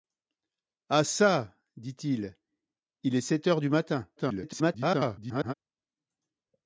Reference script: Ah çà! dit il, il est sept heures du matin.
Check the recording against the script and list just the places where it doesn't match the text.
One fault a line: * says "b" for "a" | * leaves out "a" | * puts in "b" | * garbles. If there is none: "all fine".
* garbles